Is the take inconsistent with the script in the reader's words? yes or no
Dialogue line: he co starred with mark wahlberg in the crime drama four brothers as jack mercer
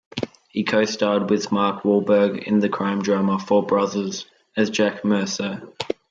no